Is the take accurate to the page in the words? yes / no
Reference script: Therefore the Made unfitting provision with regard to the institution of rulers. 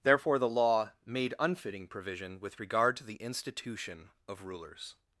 no